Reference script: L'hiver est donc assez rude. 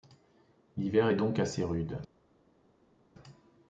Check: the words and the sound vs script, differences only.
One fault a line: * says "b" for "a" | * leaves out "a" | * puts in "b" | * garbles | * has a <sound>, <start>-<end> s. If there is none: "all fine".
all fine